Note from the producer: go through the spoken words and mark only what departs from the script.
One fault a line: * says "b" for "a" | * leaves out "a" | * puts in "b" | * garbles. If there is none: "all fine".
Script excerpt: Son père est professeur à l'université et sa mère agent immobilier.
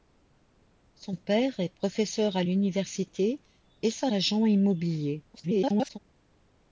* leaves out "mère"
* garbles